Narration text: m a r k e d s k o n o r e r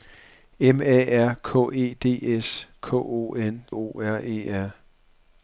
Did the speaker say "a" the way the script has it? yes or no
yes